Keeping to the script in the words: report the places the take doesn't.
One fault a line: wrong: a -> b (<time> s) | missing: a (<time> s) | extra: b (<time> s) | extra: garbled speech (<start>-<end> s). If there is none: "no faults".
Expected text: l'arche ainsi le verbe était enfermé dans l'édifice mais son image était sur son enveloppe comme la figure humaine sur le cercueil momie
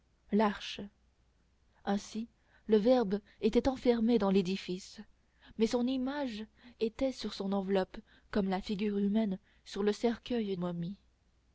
no faults